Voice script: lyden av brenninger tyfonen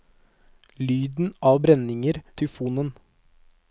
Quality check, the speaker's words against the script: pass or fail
pass